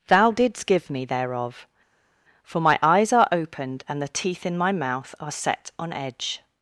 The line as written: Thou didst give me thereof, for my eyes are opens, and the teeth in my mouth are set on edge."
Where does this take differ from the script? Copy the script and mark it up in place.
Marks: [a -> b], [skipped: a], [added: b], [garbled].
Thou didst give me thereof, for my eyes are [opens, -> opened] and the teeth in my mouth are set on edge."